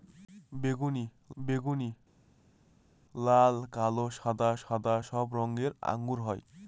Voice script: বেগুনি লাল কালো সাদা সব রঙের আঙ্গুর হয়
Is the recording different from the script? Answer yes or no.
yes